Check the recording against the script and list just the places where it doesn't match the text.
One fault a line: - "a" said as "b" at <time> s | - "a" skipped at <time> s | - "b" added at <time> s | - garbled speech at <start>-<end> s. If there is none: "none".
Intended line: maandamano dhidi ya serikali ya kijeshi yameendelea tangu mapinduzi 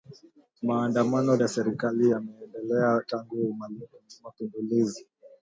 - "dhidi" skipped at 1.4 s
- "ya kijeshi" skipped at 2.1 s